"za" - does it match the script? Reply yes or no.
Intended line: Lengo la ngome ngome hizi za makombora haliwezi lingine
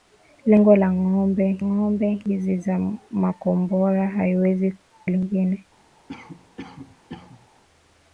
yes